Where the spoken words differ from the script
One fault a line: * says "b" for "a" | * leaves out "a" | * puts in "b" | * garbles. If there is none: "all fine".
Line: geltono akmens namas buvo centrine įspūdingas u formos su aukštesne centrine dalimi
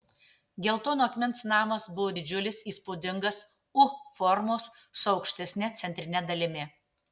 * says "didžiulis" for "centrine"